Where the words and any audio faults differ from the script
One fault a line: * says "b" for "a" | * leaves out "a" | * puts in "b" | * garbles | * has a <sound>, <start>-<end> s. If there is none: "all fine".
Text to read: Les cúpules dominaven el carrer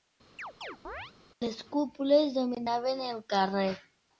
* has a chirp, 0.4-1.1 s